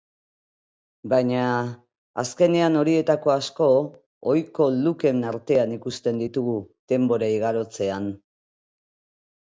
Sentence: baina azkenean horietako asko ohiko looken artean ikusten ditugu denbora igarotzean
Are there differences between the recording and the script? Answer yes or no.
no